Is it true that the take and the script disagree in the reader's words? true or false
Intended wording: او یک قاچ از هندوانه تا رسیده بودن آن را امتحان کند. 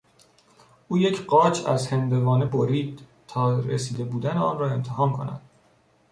true